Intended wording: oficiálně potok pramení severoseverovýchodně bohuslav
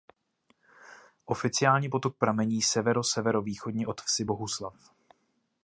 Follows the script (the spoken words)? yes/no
no